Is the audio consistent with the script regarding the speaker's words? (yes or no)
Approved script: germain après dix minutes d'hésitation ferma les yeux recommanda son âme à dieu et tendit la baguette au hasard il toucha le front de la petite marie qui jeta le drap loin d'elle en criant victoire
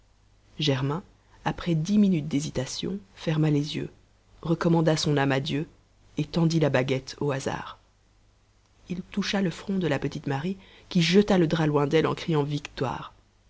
yes